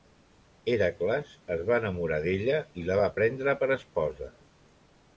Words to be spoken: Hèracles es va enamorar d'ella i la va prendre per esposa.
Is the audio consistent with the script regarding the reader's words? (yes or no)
yes